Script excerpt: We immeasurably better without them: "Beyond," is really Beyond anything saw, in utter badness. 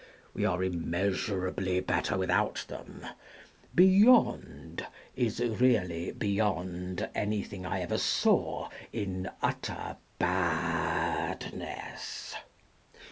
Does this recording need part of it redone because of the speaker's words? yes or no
yes